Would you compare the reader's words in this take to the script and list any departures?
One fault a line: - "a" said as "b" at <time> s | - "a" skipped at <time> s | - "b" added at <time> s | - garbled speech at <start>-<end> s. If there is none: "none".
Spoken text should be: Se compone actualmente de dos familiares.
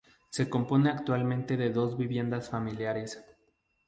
- "viviendas" added at 1.9 s